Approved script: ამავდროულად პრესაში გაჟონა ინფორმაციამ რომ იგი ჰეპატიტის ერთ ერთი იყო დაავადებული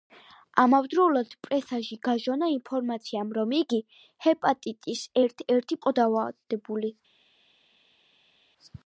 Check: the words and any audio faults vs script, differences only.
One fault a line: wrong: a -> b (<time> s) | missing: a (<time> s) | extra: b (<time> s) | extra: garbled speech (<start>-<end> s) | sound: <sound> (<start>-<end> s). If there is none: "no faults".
no faults